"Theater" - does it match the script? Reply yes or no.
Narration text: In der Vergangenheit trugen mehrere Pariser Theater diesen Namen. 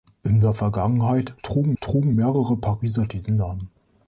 no